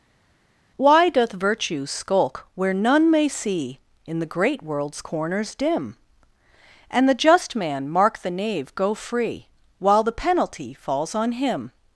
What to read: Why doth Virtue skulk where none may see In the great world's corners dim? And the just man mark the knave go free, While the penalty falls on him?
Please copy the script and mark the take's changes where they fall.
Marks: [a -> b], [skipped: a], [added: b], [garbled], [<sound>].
Why doth Virtue skulk where none may see In the great world's corners dim? And the just man mark the knave go free, While the penalty falls on him?